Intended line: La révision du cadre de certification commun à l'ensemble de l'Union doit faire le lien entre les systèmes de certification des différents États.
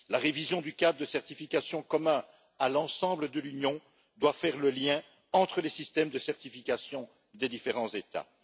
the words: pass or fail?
pass